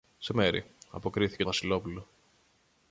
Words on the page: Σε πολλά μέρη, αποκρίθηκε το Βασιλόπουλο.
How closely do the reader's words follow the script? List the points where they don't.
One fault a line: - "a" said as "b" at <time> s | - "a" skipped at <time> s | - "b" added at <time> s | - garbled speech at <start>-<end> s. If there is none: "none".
- "πολλά" skipped at 0.3 s
- "το" skipped at 1.4 s